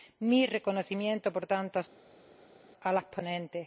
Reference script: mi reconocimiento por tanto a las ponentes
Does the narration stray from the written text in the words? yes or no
no